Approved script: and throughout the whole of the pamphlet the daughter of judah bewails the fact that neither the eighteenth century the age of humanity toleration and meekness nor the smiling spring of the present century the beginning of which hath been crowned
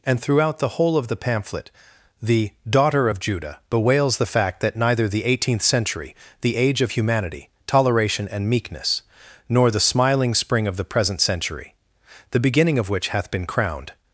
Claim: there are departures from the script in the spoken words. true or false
false